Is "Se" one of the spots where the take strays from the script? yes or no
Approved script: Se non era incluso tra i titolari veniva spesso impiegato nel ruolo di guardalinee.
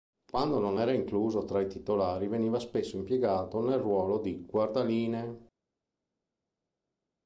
yes